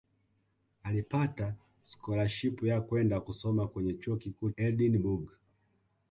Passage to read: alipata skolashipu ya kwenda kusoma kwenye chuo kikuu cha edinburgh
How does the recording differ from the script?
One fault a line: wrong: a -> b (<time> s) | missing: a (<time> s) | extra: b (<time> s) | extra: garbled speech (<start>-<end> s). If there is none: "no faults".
missing: cha (4.5 s)